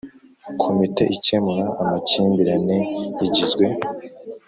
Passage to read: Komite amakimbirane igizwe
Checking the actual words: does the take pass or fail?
fail